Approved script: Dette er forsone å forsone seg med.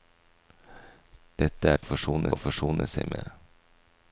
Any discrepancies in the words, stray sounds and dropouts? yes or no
no